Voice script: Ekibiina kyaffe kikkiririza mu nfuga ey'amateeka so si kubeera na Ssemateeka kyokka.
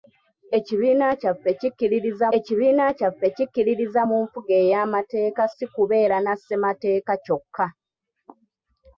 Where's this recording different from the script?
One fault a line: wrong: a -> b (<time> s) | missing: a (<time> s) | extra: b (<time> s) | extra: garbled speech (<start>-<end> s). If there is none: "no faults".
extra: ekibiina kyaffe kikkiririza (2.4 s)
missing: so (5.4 s)